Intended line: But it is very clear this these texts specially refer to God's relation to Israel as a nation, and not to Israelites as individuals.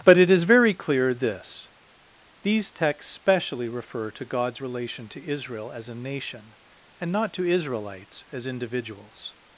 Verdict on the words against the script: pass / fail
pass